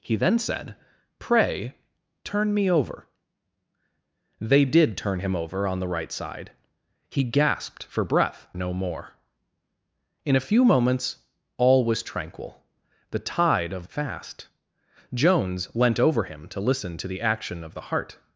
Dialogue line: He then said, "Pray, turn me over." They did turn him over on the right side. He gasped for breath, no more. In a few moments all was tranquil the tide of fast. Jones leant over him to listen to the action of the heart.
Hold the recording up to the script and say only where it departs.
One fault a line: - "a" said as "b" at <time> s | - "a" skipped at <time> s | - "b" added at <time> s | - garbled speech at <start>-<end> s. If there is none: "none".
none